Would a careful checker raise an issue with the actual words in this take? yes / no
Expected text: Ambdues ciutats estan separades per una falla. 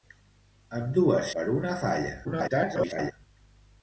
yes